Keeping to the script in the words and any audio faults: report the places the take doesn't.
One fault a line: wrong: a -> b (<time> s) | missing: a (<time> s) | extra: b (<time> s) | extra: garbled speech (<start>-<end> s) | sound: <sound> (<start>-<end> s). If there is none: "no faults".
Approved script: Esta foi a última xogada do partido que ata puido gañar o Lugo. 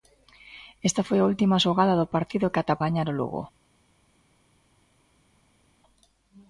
missing: puido (2.8 s)